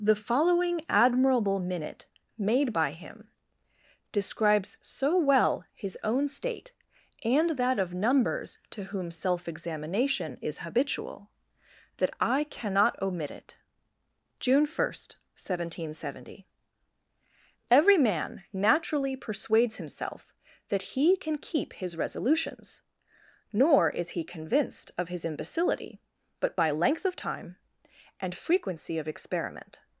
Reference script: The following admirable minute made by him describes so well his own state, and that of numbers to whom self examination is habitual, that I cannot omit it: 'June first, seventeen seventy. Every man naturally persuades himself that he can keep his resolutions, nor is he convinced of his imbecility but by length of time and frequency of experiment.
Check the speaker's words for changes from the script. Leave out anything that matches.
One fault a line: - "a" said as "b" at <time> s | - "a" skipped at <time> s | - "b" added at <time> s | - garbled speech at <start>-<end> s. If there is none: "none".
none